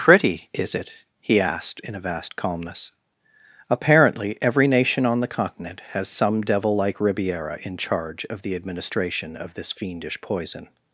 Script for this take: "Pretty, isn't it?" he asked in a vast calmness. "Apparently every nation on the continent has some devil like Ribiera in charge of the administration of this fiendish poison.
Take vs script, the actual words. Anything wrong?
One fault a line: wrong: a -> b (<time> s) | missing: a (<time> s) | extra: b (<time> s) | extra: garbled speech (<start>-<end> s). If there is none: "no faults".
wrong: isn't -> is (0.5 s)